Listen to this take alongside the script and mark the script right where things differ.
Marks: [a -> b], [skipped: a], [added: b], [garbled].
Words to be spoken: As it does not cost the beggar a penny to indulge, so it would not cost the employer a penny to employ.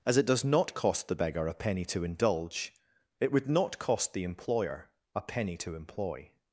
As it does not cost the beggar a penny to indulge, [skipped: so] it would not cost the employer a penny to employ.